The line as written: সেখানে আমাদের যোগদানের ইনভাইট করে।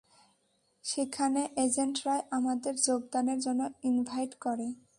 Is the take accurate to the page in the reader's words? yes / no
no